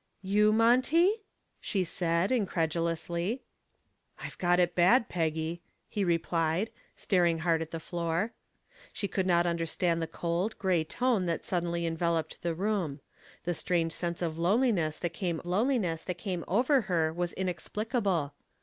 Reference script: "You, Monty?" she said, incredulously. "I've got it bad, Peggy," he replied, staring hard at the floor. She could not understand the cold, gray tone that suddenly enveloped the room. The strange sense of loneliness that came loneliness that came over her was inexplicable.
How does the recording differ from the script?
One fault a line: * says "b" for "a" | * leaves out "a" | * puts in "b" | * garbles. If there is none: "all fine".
all fine